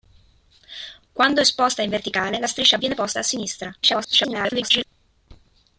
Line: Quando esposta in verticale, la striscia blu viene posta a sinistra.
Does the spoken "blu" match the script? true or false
false